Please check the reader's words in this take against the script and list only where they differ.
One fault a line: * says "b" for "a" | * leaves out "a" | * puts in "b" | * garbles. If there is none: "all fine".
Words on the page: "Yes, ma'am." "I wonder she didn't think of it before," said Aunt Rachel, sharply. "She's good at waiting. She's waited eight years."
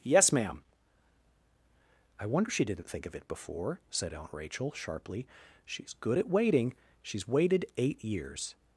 all fine